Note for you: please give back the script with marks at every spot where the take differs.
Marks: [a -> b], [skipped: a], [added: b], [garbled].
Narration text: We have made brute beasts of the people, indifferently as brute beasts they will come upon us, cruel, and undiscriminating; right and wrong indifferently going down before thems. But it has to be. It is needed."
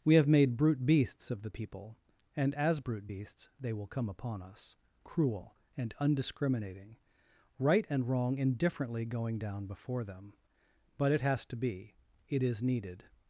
We have made brute beasts of the people, [indifferently -> and] as brute beasts they will come upon us, cruel, and undiscriminating; right and wrong indifferently going down before [thems. -> them] But it has to be. It is needed."